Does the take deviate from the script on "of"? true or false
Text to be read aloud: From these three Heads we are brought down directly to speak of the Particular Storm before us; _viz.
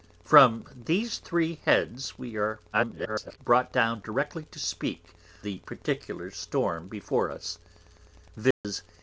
true